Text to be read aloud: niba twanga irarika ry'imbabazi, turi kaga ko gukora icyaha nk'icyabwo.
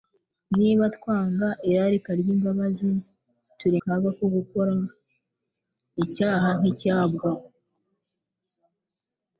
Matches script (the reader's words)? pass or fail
pass